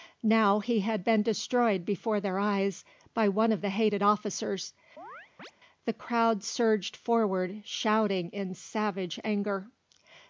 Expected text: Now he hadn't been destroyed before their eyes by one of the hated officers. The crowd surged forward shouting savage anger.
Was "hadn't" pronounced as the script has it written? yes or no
no